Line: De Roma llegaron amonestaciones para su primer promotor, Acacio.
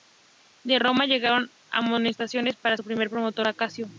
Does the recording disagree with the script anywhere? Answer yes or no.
no